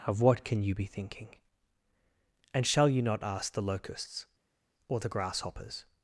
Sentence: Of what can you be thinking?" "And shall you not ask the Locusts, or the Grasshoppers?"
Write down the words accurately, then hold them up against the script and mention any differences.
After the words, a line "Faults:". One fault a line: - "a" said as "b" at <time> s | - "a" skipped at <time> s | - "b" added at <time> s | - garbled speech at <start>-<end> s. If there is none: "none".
Of what can you be thinking?" "And shall you not ask the Locusts, or the Grasshoppers?"
Faults:
none